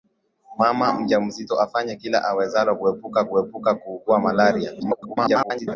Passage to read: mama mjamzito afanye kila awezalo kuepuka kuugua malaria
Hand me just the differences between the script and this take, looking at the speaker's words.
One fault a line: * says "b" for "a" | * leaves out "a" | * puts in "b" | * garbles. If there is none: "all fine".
* puts in "kuepuka"
* garbles